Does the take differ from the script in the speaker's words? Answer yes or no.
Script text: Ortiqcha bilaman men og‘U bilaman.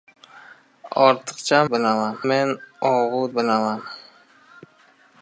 no